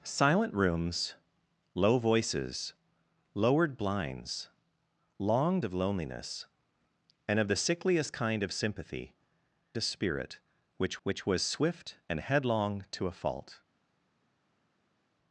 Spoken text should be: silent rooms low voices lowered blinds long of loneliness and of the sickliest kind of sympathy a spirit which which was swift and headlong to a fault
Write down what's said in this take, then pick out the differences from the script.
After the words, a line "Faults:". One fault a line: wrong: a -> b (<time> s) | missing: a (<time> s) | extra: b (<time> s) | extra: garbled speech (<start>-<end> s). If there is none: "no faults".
silent rooms low voices lowered blinds long of loneliness and of the sickliest kind of sympathy a spirit which which was swift and headlong to a fault
Faults:
no faults